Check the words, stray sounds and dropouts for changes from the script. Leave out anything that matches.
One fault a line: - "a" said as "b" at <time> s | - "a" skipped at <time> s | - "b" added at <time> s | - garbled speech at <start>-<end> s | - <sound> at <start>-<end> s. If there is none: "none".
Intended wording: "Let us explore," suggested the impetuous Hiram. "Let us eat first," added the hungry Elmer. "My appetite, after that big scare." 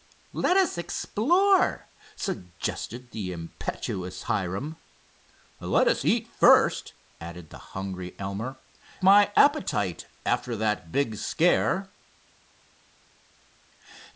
none